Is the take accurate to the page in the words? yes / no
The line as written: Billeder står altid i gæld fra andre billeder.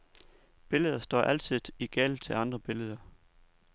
no